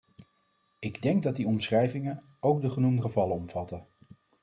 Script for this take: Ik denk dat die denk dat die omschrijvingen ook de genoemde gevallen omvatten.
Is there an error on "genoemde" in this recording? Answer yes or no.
no